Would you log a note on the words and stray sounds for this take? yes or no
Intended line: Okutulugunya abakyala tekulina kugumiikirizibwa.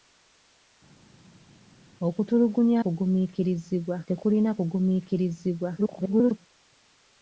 yes